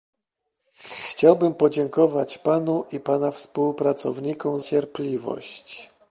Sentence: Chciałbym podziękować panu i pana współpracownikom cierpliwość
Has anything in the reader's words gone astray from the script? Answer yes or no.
no